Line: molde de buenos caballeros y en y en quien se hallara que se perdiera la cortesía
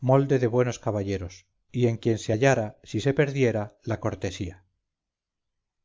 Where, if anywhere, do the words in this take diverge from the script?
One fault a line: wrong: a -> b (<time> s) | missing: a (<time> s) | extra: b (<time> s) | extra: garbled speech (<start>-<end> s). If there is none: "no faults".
missing: y en (2.0 s)
wrong: que -> si (2.8 s)